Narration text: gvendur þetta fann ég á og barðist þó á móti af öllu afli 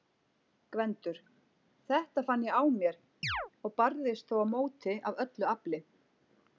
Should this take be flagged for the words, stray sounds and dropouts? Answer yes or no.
yes